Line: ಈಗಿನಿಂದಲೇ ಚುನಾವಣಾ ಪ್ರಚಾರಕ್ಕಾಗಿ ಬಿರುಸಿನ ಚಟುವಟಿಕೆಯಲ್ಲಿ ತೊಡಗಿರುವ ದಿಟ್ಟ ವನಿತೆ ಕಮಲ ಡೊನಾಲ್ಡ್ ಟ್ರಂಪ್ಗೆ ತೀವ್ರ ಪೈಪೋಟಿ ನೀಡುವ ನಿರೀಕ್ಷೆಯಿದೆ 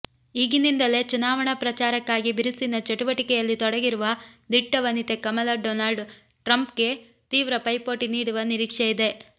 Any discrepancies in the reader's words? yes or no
no